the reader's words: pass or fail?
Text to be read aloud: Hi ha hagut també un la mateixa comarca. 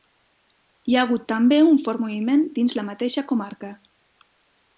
fail